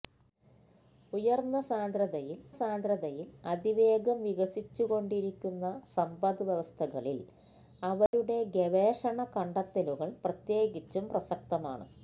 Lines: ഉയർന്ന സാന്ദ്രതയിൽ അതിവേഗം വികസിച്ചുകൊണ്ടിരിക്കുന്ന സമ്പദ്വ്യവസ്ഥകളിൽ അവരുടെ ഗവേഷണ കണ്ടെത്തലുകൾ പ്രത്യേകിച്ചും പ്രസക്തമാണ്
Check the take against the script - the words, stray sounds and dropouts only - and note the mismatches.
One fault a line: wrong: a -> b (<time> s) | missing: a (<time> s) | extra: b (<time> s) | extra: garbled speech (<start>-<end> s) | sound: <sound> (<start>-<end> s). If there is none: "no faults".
extra: സാന്ദ്രതയിൽ (2.5 s)
sound: dropout (8.1-8.1 s)